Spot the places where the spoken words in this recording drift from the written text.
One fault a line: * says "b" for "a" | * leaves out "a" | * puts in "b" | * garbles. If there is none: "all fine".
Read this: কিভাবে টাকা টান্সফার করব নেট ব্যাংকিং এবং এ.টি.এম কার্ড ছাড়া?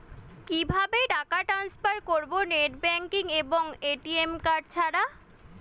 all fine